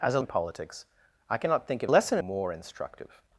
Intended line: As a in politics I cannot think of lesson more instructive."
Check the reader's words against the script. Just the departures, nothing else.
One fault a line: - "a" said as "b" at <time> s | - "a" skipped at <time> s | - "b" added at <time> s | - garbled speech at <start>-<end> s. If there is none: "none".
none